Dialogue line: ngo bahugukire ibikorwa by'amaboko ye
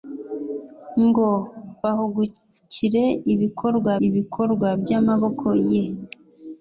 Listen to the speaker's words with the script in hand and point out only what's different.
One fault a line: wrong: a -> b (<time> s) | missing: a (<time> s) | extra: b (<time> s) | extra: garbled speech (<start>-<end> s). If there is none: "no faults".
extra: ibikorwa (4.1 s)